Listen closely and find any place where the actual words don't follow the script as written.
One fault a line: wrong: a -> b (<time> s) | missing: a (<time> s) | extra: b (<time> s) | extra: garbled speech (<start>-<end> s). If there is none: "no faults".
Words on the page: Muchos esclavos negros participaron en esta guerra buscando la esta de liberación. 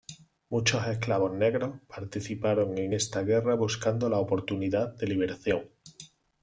wrong: esta -> oportunidad (4.2 s)